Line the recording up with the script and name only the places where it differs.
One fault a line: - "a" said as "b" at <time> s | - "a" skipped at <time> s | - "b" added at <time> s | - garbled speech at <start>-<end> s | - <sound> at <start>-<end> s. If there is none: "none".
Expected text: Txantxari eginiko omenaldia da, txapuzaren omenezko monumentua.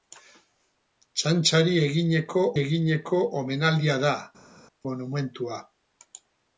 - "eginiko" added at 2.6 s
- "txapuzaren omenezko" skipped at 4.1 s